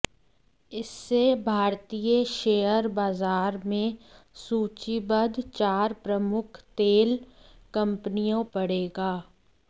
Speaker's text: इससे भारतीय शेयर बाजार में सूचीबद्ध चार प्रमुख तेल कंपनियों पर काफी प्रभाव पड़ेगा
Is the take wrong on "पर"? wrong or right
wrong